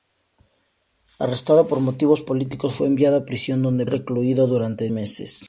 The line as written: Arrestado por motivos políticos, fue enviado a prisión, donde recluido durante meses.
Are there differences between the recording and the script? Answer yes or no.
no